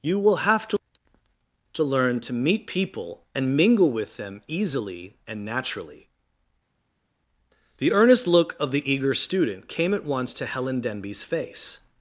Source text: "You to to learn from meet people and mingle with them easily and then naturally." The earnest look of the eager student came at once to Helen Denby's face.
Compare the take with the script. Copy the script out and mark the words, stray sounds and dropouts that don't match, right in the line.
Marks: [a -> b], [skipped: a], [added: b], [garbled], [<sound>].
"You [added: will have] to to learn [from -> to] meet people and mingle with them easily and [skipped: then] naturally." The earnest look of the eager student came at once to Helen Denby's face.